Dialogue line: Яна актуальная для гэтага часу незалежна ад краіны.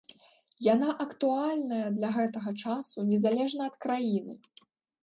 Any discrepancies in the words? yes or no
no